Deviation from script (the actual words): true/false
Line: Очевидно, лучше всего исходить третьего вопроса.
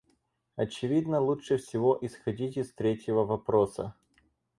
true